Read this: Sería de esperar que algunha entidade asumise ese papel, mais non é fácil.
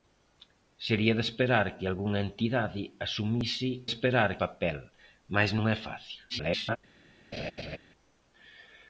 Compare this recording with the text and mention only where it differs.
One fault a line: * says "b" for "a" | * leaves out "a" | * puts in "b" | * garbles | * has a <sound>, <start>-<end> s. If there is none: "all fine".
* says "esperar" for "ese"
* garbles
* has a laugh, 7.3-7.8 s